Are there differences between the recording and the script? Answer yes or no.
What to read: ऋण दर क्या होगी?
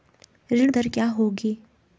no